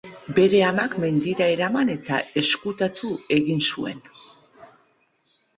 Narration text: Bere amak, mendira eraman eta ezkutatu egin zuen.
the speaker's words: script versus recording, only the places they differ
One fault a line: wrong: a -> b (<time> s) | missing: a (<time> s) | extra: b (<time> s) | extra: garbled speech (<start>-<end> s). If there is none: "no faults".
no faults